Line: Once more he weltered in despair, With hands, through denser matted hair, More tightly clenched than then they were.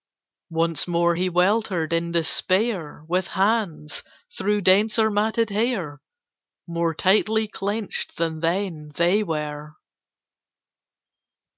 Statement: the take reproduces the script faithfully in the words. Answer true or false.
true